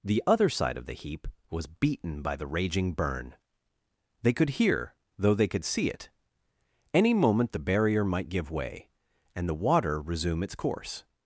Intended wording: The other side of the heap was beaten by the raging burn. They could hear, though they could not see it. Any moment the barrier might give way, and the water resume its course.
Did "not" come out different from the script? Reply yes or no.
yes